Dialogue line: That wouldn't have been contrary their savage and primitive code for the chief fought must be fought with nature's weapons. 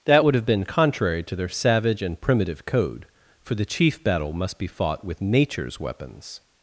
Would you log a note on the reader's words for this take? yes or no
yes